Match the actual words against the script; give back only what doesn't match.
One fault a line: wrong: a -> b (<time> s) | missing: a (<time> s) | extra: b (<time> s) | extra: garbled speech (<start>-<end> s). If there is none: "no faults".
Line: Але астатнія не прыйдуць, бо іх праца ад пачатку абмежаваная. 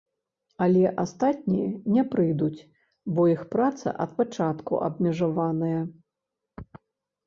no faults